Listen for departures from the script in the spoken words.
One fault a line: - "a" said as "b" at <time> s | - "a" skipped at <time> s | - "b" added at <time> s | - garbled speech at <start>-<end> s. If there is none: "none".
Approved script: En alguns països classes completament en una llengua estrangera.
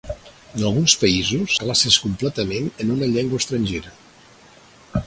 none